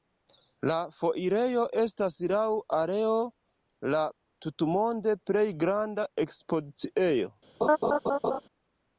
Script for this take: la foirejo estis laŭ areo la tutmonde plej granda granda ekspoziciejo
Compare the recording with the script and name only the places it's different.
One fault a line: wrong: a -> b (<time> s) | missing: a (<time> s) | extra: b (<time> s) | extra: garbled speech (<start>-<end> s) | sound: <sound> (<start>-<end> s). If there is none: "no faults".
wrong: estis -> estas (1.8 s)
missing: granda (6.1 s)
sound: laugh (7.6-8.4 s)